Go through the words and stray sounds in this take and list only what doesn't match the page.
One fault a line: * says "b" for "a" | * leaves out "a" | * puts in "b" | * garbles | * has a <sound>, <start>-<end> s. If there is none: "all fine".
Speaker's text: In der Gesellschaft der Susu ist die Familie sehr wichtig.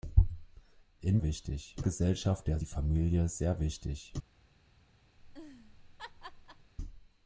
* says "wichtig" for "der"
* leaves out "Susu ist"
* has a laugh, 5.2-6.7 s